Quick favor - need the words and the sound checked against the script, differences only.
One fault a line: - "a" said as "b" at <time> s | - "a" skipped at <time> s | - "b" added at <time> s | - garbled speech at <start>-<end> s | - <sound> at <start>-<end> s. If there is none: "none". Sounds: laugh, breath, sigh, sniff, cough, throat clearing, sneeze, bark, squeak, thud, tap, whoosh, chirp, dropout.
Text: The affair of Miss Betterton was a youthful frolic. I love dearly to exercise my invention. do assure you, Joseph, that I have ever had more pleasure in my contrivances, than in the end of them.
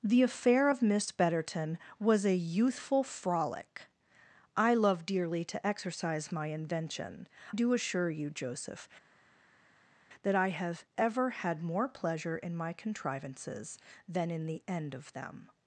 none